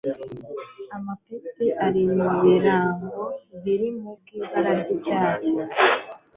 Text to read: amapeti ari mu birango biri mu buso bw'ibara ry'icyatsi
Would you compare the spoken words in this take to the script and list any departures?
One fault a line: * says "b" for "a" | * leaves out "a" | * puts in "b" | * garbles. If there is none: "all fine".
* leaves out "buso"